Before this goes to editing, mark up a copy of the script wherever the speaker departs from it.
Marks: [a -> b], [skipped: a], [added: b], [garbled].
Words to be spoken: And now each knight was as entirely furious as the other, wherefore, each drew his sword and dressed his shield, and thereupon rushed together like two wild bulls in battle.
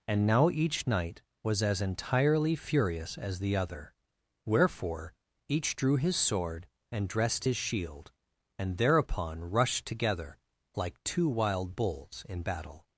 And now each knight was as entirely furious as the other, wherefore, each drew his sword and dressed his shield, and thereupon rushed together like two wild bulls in battle.